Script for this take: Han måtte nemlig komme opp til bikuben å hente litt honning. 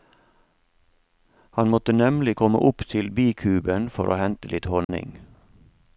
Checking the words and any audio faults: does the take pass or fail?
fail